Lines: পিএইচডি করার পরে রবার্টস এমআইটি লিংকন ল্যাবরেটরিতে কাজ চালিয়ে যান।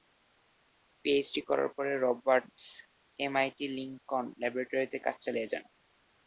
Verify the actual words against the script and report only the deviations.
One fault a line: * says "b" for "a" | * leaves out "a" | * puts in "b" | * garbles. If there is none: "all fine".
all fine